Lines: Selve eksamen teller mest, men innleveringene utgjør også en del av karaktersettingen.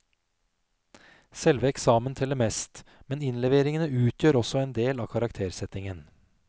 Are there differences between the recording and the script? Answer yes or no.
no